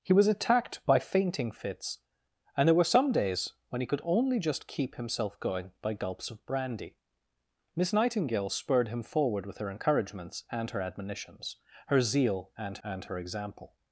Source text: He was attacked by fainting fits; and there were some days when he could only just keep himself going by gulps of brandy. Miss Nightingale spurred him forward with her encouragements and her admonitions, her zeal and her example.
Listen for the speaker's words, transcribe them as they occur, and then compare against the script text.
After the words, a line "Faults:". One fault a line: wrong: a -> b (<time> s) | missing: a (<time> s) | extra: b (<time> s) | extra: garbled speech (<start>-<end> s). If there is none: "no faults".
He was attacked by fainting fits; and there were some days when he could only just keep himself going by gulps of brandy. Miss Nightingale spurred him forward with her encouragements and her admonitions, her zeal and and her example.
Faults:
extra: and (12.8 s)